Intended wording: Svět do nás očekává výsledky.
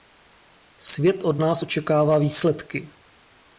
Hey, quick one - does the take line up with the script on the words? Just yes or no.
no